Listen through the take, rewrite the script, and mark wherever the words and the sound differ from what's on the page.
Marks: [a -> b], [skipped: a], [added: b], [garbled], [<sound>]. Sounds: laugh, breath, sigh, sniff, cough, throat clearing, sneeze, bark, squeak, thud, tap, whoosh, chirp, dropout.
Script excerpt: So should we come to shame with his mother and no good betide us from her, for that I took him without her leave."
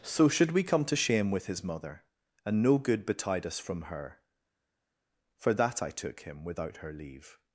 So should we come to shame with his mother and no good betide us from her, for that I took him without her leave."